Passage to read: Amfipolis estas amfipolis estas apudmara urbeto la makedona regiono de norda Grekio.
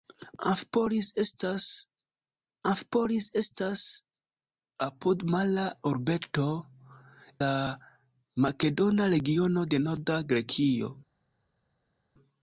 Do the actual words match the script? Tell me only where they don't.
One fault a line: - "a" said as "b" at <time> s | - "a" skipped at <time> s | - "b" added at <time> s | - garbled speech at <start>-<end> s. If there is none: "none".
none